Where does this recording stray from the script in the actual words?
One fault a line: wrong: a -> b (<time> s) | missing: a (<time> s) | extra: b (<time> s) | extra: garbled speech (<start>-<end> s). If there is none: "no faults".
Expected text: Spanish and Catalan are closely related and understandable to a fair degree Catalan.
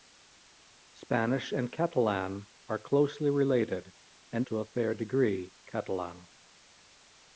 missing: understandable (4.5 s)